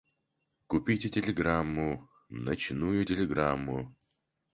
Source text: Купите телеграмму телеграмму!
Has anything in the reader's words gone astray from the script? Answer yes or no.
yes